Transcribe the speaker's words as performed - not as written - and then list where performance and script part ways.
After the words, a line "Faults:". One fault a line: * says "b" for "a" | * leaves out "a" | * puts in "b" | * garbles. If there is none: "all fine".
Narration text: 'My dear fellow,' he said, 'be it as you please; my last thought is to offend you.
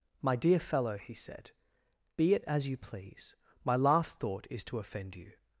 'My dear fellow,' he said, 'be it as you please; my last thought is to offend you.
Faults:
all fine